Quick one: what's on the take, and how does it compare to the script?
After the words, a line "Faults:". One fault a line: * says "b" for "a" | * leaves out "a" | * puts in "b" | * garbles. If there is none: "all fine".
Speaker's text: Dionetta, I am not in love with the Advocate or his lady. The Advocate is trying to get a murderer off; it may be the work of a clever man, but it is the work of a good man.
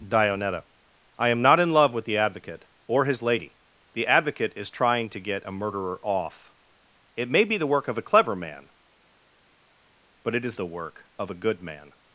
Dionetta, I am not in love with the Advocate or his lady. The Advocate is trying to get a murderer off; it may be the work of a clever man, but it is the work of a good man.
Faults:
all fine